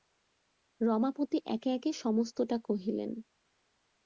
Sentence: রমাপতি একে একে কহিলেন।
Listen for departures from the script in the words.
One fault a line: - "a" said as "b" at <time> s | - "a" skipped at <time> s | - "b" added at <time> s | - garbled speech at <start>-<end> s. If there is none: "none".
- "সমস্তটা" added at 1.9 s